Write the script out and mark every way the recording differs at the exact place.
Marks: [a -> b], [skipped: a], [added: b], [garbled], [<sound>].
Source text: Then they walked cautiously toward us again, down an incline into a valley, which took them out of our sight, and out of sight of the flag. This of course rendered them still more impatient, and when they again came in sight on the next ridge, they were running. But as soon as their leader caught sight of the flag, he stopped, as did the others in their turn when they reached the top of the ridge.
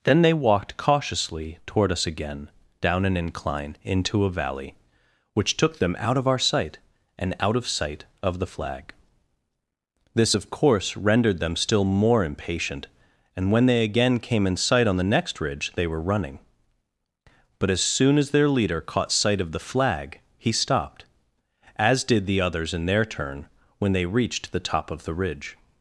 Then they walked cautiously toward us again, down an incline into a valley, which took them out of our sight, and out of sight of the flag. This of course rendered them still more impatient, and when they again came in sight on the next ridge, they were running. But as soon as their leader caught sight of the flag, he stopped, as did the others in their turn when they reached the top of the ridge.